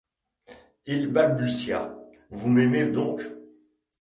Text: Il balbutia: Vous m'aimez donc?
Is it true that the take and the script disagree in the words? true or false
false